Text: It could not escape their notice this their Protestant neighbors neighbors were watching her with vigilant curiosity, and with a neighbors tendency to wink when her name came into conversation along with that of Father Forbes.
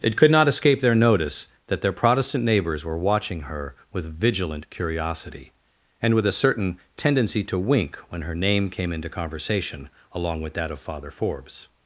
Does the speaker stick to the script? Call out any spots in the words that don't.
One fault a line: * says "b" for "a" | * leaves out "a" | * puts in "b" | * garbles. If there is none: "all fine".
* says "that" for "this"
* leaves out "neighbors"
* says "certain" for "neighbors"